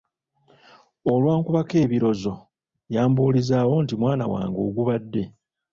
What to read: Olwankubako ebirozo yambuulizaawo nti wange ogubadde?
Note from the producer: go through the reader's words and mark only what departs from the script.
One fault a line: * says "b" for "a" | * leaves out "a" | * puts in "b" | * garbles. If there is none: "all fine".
* puts in "mwana"